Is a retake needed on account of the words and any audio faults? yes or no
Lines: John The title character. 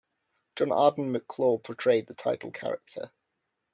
yes